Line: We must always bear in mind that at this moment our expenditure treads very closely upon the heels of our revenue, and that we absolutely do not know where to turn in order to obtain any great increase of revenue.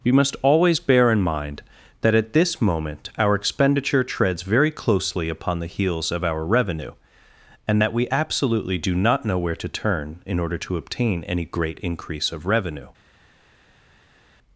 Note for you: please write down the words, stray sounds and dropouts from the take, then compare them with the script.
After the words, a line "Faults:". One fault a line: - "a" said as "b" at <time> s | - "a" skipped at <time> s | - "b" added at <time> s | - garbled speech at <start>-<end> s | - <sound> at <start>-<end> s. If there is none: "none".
We must always bear in mind that at this moment our expenditure treads very closely upon the heels of our revenue, and that we absolutely do not know where to turn in order to obtain any great increase of revenue.
Faults:
none